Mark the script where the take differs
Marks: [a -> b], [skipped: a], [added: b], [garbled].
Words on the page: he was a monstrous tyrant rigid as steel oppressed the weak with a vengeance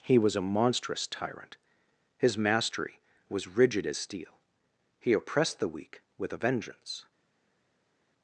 he was a monstrous tyrant [added: his mastery was] rigid as steel [added: he] oppressed the weak with a vengeance